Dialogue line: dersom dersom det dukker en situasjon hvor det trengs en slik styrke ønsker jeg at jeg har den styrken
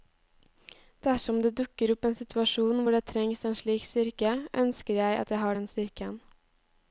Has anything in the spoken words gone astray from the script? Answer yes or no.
yes